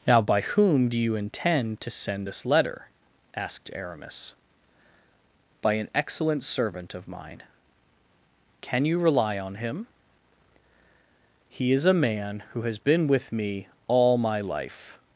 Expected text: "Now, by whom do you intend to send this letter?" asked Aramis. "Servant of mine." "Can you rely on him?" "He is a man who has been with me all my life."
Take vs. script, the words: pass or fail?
fail